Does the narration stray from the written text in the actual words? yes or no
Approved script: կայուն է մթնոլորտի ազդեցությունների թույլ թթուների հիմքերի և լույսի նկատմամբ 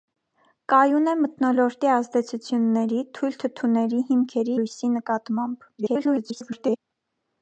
yes